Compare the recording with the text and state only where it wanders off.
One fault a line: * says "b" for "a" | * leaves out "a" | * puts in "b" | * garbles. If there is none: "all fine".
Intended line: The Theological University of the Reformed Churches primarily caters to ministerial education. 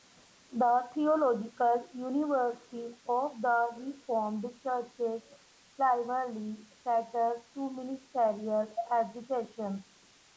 all fine